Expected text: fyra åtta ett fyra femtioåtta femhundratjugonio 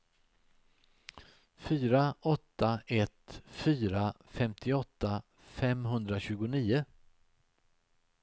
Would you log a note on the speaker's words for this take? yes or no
no